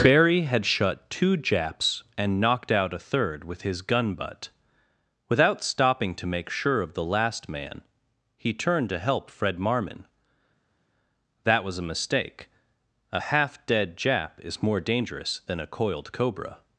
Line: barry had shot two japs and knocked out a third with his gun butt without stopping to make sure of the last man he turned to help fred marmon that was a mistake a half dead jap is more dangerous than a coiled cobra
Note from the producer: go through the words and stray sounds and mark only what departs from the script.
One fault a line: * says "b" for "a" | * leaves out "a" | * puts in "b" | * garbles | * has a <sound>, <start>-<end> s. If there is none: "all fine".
* says "shut" for "shot"